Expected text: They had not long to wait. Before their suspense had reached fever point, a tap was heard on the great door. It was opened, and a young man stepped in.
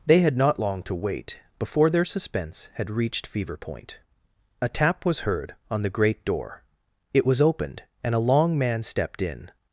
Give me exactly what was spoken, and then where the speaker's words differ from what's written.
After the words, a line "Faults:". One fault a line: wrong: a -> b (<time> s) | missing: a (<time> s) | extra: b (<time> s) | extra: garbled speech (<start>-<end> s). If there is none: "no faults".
They had not long to wait. Before their suspense had reached fever point, a tap was heard on the great door. It was opened, and a long man stepped in.
Faults:
wrong: young -> long (8.2 s)